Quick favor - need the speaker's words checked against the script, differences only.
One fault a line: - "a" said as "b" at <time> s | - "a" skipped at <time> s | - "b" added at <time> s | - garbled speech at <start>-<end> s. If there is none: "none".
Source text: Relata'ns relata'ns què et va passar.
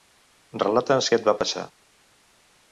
- "relata'ns" skipped at 1.1 s